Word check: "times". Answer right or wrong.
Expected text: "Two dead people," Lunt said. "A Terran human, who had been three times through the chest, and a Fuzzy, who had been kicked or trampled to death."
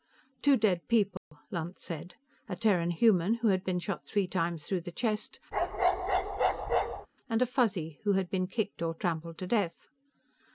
right